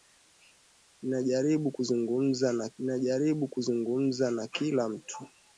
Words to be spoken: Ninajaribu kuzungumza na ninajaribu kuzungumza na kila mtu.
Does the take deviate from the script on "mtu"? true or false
false